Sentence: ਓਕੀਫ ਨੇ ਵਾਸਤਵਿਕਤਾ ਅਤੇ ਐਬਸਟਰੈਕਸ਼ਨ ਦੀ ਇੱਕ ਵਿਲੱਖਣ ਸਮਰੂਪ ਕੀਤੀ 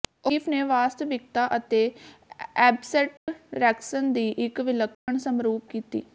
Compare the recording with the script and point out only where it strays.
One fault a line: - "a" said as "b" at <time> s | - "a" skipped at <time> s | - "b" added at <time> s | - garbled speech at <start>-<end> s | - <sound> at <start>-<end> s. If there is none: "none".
- dropout at 3.2-3.3 s
- dropout at 4.9-5.1 s